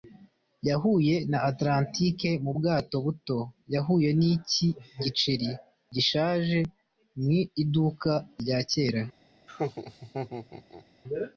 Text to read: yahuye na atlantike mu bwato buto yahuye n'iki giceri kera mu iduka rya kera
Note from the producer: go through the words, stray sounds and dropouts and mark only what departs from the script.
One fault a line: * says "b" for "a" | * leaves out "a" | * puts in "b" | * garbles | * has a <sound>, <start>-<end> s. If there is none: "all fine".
* says "gishaje" for "kera"
* has a laugh, 9.5-10.9 s